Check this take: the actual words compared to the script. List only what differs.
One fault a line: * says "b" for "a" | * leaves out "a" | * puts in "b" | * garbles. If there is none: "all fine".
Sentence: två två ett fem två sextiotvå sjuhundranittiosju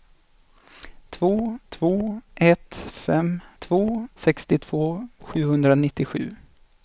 all fine